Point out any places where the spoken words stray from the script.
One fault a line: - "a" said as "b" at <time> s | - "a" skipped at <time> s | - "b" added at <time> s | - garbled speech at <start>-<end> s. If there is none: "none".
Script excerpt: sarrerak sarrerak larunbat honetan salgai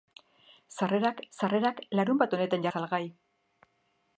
none